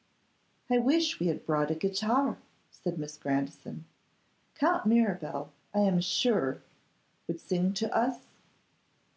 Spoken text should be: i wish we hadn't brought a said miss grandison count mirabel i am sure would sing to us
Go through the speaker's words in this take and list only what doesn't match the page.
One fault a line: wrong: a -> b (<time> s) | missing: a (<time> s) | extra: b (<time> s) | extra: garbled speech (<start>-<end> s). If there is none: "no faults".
wrong: hadn't -> had (1.3 s)
extra: guitar (1.8 s)